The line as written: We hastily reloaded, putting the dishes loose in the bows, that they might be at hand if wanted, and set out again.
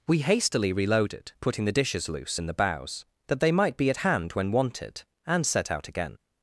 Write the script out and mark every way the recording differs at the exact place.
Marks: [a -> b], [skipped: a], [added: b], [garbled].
We hastily reloaded, putting the dishes loose in the bows, that they might be at hand [if -> when] wanted, and set out again.